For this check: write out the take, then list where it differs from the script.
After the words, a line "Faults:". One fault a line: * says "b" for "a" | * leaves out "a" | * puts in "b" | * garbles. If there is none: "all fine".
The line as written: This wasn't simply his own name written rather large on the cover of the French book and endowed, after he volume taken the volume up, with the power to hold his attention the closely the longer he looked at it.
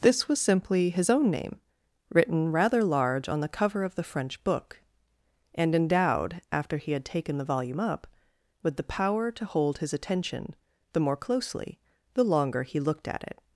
This was simply his own name written rather large on the cover of the French book and endowed, after he had taken the volume up, with the power to hold his attention the more closely the longer he looked at it.
Faults:
* says "was" for "wasn't"
* says "had" for "volume"
* puts in "more"